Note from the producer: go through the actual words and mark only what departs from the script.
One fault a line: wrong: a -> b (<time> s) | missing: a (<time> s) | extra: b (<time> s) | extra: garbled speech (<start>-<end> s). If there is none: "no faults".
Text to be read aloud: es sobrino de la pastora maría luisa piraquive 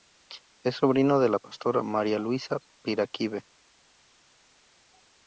no faults